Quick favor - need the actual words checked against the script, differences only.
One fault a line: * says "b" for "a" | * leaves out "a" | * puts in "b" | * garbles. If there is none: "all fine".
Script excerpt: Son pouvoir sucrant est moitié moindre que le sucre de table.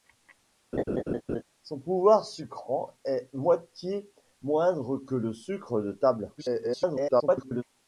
* garbles